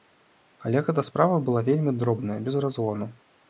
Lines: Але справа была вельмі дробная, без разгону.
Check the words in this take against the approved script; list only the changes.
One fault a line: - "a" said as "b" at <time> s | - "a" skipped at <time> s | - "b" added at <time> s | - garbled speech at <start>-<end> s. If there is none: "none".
- "гэта" added at 0.9 s